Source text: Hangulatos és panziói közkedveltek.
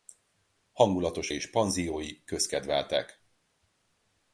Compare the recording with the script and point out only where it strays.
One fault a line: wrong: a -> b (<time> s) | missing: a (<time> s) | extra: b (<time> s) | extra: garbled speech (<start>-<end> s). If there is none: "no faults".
no faults